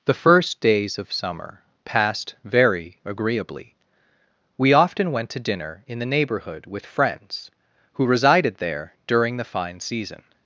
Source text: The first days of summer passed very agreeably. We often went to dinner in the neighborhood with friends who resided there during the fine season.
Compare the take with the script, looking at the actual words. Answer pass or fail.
pass